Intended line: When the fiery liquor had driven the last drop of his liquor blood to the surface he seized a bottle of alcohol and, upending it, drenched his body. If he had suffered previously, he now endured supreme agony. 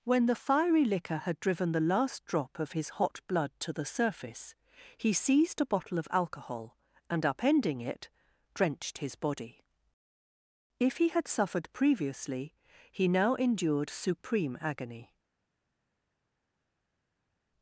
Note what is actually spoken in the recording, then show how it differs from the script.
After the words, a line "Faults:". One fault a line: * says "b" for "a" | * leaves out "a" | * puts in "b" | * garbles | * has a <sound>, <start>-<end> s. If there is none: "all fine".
When the fiery liquor had driven the last drop of his hot blood to the surface he seized a bottle of alcohol and, upending it, drenched his body. If he had suffered previously, he now endured supreme agony.
Faults:
* says "hot" for "liquor"